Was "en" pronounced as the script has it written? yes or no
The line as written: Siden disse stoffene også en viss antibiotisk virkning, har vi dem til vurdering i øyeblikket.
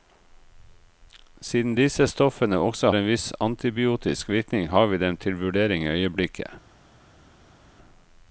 yes